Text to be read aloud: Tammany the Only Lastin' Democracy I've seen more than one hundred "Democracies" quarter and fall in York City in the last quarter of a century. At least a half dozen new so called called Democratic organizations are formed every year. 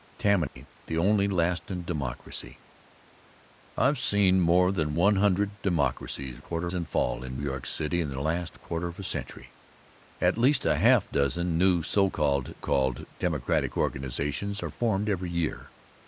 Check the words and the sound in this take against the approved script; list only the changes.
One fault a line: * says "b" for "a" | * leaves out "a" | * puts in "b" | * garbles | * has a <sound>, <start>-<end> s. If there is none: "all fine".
* has a dropout, 0.5-0.6 s